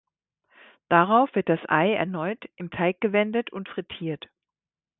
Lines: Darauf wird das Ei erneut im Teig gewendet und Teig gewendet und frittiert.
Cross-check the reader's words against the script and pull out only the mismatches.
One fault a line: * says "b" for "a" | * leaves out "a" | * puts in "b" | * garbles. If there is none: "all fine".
* leaves out "Teig gewendet und"